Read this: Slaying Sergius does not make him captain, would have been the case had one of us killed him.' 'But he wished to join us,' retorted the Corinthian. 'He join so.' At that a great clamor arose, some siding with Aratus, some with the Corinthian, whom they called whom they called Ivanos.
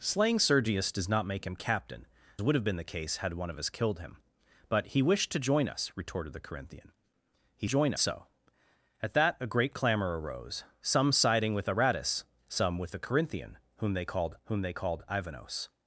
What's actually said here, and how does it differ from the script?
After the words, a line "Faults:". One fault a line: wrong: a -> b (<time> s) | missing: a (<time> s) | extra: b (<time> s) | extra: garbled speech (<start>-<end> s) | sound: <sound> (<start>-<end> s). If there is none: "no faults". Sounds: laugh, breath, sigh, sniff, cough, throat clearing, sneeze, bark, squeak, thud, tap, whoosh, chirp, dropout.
Slaying Sergius does not make him captain, would have been the case had one of us killed him.' 'But he wished to join us,' retorted the Corinthian. 'He join so.' At that a great clamor arose, some siding with Aratus, some with the Corinthian, whom they called whom they called Ivanos.
Faults:
no faults